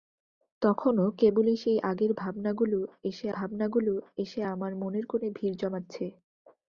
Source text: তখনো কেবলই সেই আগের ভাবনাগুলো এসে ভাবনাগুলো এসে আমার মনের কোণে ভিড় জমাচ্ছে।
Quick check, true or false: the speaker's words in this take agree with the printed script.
true